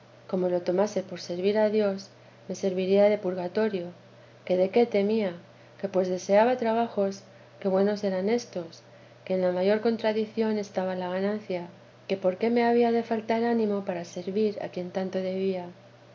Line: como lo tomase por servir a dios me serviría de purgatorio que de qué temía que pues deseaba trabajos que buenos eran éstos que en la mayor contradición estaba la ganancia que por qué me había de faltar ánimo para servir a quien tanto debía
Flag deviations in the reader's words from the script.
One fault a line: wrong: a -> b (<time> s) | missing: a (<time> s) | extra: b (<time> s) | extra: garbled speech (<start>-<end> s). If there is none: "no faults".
no faults